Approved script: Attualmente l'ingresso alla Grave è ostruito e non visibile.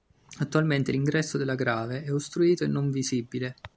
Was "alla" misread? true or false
true